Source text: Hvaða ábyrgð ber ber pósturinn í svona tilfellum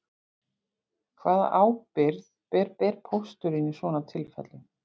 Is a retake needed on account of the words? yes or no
no